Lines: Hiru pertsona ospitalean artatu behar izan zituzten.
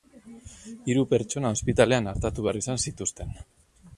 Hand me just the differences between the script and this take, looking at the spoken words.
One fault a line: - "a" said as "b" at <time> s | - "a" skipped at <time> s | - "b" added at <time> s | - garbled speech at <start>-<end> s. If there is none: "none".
none